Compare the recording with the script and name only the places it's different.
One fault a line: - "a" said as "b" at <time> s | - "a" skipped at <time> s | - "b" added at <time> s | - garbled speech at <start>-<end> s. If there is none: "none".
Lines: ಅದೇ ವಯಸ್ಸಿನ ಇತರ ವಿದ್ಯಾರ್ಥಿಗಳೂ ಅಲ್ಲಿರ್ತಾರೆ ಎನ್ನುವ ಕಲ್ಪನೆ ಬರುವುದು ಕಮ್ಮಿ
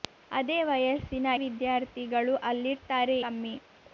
- "ಇತರ" skipped at 1.3 s
- "ಎನ್ನುವ ಕಲ್ಪನೆ ಬರುವುದು" skipped at 3.2 s